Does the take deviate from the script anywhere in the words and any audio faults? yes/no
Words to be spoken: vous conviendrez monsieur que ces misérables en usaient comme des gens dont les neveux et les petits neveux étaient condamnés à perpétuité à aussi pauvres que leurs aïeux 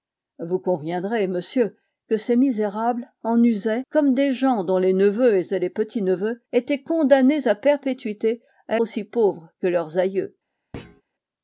yes